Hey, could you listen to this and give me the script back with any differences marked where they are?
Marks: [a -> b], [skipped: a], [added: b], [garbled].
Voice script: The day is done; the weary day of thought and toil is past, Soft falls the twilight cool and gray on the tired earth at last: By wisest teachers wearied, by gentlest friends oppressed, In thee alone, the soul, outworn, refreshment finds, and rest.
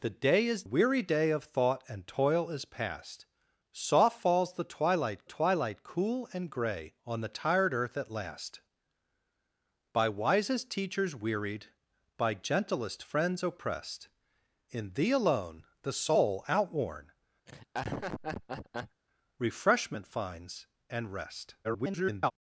The day is [skipped: done; the] weary day of thought and toil is past, Soft falls the twilight [added: twilight] cool and gray on the tired earth at last: By wisest teachers wearied, by gentlest friends oppressed, In thee alone, the soul, outworn, refreshment finds, and rest. [garbled]